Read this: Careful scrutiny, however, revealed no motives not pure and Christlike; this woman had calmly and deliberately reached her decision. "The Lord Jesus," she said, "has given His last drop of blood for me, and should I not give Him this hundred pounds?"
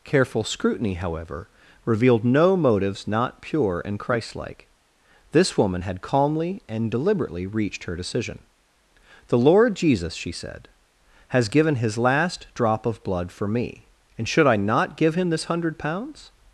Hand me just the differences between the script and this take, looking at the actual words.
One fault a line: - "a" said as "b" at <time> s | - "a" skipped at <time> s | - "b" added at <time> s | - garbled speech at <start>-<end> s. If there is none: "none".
none